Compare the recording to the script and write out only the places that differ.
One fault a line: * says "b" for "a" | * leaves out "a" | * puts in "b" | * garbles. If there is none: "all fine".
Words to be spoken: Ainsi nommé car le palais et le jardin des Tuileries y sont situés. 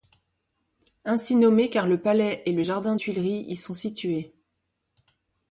* leaves out "des"